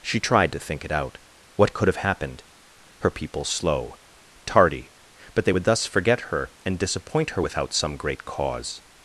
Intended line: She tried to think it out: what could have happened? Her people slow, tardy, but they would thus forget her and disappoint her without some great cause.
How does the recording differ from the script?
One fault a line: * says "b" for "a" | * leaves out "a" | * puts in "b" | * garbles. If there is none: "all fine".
all fine